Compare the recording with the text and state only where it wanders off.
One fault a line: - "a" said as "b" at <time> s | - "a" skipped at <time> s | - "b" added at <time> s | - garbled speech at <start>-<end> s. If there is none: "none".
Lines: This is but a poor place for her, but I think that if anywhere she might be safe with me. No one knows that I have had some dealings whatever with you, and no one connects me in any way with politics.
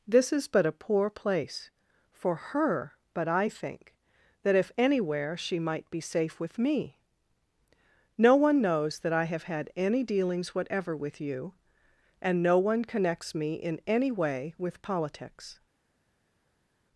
- "some" said as "any" at 9.8 s